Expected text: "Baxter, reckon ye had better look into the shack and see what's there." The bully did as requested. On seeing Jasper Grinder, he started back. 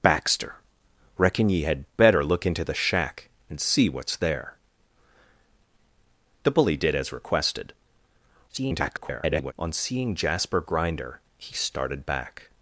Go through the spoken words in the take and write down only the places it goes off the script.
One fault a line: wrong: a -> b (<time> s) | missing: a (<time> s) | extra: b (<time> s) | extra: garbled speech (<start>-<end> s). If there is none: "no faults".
extra: garbled speech (8.5-9.5 s)